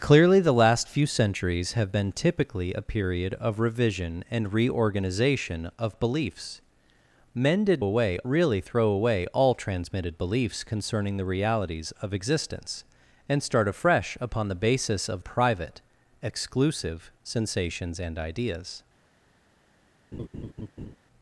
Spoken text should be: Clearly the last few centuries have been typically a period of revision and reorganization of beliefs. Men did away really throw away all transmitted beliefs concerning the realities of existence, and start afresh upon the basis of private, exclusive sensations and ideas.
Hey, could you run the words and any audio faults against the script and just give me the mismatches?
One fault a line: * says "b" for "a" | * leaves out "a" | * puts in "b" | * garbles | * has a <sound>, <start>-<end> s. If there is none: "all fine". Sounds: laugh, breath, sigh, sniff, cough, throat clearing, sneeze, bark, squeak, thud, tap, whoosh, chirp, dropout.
* has a laugh, 20.1-21.0 s